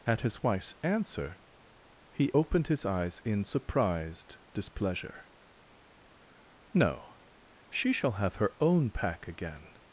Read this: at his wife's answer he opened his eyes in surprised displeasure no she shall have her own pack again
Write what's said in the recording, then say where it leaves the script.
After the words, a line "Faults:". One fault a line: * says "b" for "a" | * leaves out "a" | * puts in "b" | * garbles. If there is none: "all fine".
at his wife's answer he opened his eyes in surprised displeasure no she shall have her own pack again
Faults:
all fine